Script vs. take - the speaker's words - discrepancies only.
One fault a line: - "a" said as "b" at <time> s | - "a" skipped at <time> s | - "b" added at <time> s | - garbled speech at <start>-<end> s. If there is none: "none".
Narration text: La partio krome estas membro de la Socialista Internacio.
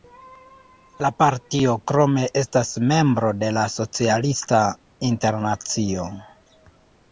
none